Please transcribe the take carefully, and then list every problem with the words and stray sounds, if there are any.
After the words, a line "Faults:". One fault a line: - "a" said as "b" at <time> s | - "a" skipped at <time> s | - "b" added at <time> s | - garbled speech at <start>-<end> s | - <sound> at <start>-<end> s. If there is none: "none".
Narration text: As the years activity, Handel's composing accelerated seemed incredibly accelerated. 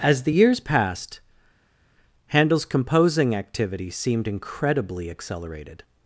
As the years passed, Handel's composing activity seemed incredibly accelerated.
Faults:
- "activity" said as "passed" at 0.6 s
- "accelerated" said as "activity" at 3.3 s